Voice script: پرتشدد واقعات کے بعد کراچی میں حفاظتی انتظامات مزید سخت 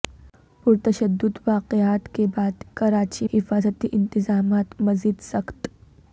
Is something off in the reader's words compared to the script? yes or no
yes